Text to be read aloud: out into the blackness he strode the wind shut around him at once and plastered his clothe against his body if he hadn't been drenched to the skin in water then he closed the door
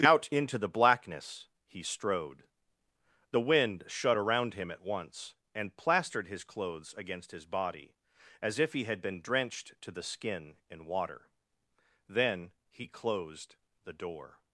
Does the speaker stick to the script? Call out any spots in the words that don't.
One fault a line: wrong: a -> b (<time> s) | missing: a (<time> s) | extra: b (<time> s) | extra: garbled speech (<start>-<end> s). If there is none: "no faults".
wrong: clothe -> clothes (6.4 s)
extra: as (8.4 s)
wrong: hadn't -> had (8.8 s)